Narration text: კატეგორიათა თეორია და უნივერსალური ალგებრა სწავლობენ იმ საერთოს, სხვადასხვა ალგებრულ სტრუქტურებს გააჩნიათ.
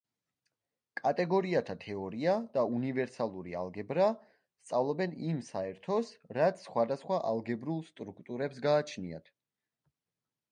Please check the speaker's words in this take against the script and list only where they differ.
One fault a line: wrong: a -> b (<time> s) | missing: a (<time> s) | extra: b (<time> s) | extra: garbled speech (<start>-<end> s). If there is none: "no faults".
extra: რაც (6.4 s)